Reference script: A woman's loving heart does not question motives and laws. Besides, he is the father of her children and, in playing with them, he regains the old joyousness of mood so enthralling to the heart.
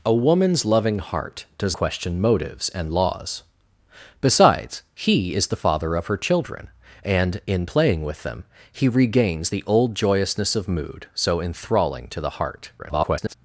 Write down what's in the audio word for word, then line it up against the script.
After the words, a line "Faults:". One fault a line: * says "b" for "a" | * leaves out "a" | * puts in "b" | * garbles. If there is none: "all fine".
A woman's loving heart does question motives and laws. Besides, he is the father of her children and, in playing with them, he regains the old joyousness of mood so enthralling to the heart. [garbled]
Faults:
* leaves out "not"
* garbles